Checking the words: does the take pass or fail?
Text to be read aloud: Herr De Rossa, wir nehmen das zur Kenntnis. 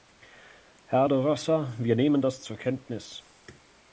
pass